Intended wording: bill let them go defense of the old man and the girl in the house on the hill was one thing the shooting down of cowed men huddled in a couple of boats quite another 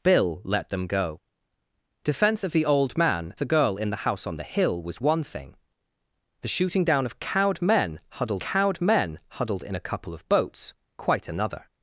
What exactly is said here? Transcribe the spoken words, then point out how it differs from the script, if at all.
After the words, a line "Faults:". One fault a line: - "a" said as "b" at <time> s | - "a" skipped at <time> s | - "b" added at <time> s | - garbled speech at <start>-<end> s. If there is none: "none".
bill let them go defense of the old man the girl in the house on the hill was one thing the shooting down of cowed men huddled cowed men huddled in a couple of boats quite another
Faults:
- "and" skipped at 3.3 s
- "cowed men huddled" added at 8.4 s